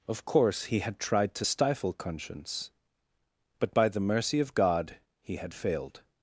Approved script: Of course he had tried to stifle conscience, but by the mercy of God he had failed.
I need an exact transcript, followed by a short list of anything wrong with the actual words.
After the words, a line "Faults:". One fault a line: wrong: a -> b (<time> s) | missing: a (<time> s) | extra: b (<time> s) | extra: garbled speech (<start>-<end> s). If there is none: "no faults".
Of course he had tried to stifle conscience, but by the mercy of God he had failed.
Faults:
no faults